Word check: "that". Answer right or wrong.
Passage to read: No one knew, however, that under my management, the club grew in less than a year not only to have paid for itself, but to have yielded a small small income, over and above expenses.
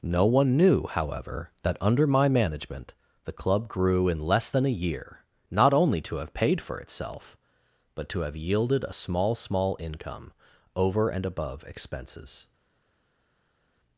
right